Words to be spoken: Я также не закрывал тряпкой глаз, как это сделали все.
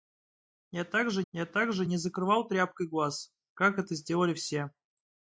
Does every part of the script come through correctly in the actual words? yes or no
no